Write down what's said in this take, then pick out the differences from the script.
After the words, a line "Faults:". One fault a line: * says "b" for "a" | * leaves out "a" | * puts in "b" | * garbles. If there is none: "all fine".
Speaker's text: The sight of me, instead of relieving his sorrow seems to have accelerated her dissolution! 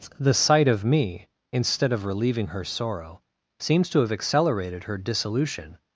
The sight of me, instead of relieving her sorrow seems to have accelerated her dissolution!
Faults:
* says "her" for "his"